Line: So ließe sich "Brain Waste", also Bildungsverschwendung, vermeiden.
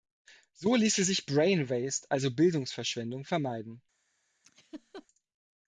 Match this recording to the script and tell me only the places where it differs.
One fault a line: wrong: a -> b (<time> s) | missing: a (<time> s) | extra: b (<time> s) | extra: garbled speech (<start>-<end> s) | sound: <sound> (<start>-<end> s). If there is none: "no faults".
sound: laugh (4.4-5.1 s)